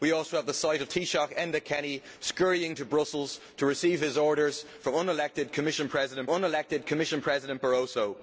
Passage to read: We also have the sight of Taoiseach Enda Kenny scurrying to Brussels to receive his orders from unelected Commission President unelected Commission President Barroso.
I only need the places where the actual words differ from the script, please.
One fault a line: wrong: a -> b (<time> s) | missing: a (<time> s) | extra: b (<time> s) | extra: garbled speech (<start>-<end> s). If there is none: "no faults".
no faults